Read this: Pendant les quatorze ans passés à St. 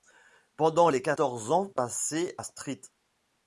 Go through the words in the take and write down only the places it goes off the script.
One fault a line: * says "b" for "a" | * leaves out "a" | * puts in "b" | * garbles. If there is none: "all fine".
all fine